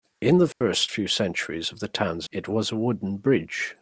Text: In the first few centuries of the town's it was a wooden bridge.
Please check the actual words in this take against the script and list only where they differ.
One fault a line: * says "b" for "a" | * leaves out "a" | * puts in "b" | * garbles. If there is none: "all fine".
all fine